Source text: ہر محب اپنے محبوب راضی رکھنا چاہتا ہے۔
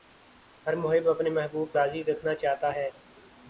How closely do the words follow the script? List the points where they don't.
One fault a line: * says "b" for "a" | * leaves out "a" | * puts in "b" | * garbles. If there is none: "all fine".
all fine